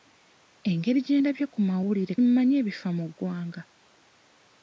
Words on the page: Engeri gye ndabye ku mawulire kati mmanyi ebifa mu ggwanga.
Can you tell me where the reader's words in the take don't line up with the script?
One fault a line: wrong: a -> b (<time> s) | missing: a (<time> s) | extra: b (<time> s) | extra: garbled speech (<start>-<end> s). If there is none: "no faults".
missing: kati (2.1 s)